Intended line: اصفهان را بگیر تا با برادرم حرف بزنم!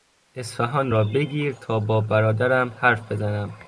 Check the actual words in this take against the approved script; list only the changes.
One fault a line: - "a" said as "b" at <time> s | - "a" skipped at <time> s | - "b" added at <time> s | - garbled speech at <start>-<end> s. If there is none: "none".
none